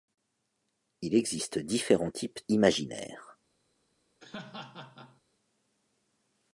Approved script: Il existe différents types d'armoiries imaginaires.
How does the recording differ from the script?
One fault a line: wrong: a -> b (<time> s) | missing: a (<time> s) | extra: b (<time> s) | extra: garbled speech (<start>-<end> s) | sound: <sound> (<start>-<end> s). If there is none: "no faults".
missing: d'armoiries (2.4 s)
sound: laugh (4.2-5.2 s)